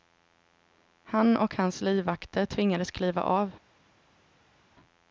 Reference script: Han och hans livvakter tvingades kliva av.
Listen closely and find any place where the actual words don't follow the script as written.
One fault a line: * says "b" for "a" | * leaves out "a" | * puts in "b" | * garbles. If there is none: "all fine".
all fine